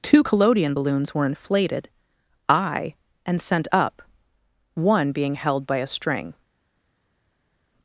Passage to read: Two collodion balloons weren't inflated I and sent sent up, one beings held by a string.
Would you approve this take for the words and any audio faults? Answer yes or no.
no